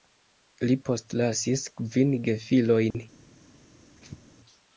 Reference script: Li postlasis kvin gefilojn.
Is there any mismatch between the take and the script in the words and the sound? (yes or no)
yes